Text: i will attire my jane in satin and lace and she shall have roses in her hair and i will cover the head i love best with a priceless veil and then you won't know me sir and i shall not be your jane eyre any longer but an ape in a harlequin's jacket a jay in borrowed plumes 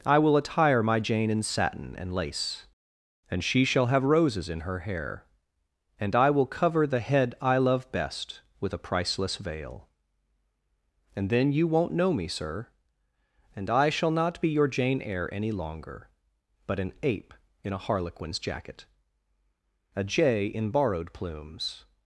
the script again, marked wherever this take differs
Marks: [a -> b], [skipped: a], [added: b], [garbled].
i will attire my jane in satin and lace and she shall have roses in her hair and i will cover the head i love best with a priceless veil and then you won't know me sir and i shall not be your jane eyre any longer but an ape in a harlequin's jacket a jay in borrowed plumes